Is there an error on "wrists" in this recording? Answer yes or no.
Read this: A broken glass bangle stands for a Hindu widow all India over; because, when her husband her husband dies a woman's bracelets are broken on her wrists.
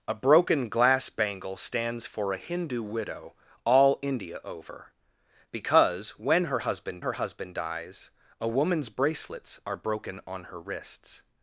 no